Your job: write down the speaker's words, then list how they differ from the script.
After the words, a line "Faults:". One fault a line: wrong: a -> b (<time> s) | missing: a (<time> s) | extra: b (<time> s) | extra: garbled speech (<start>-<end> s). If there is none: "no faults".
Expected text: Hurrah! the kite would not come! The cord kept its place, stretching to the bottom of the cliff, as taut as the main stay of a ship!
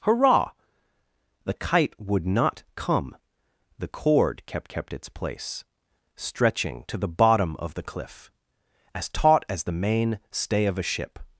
Hurrah! the kite would not come! The cord kept kept its place, stretching to the bottom of the cliff, as taut as the main stay of a ship!
Faults:
extra: kept (4.7 s)